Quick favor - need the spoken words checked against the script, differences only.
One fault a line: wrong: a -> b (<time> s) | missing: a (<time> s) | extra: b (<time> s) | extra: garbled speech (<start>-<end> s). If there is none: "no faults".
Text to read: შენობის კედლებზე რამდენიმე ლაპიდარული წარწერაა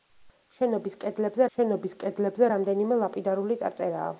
extra: შენობის კედლებზე (1.6 s)